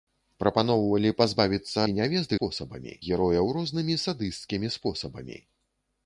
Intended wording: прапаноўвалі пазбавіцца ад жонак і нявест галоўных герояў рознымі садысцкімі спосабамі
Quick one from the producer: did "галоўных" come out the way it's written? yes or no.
no